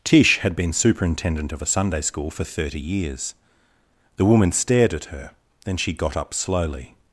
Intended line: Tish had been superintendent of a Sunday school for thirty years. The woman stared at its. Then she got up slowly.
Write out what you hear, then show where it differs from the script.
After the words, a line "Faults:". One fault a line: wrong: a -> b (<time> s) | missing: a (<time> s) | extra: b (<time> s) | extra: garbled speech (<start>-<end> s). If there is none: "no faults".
Tish had been superintendent of a Sunday school for thirty years. The woman stared at her. Then she got up slowly.
Faults:
wrong: its -> her (5.1 s)